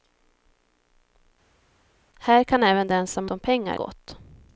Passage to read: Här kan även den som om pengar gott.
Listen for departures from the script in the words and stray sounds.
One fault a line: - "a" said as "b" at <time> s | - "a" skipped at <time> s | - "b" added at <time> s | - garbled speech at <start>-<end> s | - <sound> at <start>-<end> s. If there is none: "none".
none